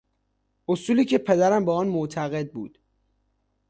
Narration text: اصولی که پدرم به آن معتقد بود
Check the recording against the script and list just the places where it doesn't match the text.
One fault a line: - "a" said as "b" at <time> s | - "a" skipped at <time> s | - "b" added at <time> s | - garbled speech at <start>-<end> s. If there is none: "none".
none